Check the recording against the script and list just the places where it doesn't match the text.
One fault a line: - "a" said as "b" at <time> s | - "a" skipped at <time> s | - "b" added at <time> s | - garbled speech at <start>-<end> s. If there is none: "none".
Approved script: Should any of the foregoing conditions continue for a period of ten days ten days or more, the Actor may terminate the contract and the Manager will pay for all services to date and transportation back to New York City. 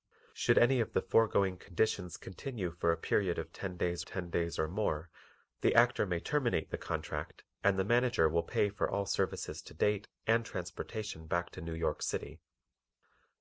none